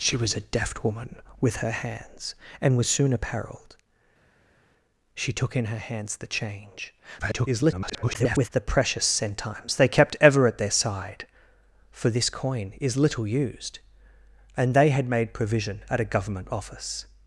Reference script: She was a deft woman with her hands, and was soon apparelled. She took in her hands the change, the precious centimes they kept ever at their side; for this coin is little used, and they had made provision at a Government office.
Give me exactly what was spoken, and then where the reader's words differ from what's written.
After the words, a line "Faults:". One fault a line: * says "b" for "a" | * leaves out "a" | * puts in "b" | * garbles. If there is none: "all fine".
She was a deft woman with her hands, and was soon apparelled. She took in her hands the change, [garbled] the precious centimes they kept ever at their side; for this coin is little used, and they had made provision at a Government office.
Faults:
* garbles